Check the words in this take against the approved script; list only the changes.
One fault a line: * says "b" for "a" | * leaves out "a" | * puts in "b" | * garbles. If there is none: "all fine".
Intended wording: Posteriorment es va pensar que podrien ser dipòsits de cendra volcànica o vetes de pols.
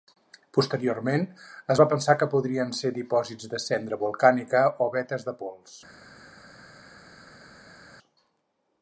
all fine